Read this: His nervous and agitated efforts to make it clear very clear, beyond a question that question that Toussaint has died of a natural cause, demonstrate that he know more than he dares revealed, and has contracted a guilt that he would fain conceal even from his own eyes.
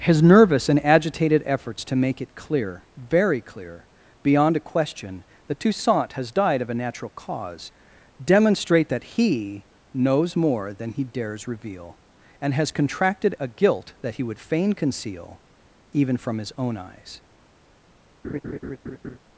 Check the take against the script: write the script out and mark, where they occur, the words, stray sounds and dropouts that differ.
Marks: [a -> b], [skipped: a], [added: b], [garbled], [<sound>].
His nervous and agitated efforts to make it clear very clear, beyond a question that [skipped: question that] Toussaint has died of a natural cause, demonstrate that he [know -> knows] more than he dares [revealed, -> reveal] and has contracted a guilt that he would fain conceal even from his own eyes. [laugh]